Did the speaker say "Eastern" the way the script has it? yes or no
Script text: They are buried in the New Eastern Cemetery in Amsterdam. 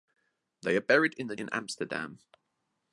no